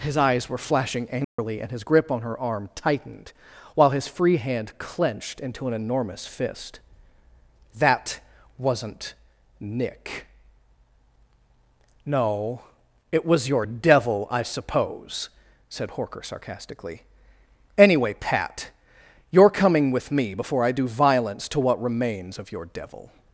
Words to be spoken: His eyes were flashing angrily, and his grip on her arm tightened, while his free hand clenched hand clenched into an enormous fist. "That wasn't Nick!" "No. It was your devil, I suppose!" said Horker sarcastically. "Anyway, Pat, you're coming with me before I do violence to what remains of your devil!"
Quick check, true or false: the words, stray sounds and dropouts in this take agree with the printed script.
false